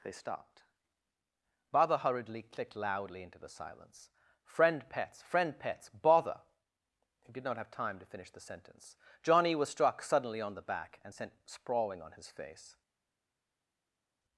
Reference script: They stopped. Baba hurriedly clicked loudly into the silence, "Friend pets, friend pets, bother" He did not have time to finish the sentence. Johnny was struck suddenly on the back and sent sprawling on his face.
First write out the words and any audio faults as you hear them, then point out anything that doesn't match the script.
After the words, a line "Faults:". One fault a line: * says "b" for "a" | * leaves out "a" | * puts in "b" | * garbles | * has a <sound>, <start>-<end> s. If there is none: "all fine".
They stopped. Baba hurriedly clicked loudly into the silence, "Friend pets, friend pets, bother" He did not have time to finish the sentence. Johnny was struck suddenly on the back and sent sprawling on his face.
Faults:
all fine